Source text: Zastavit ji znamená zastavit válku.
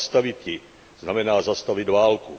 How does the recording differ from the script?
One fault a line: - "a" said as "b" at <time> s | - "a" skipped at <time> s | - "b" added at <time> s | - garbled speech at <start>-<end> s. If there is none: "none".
none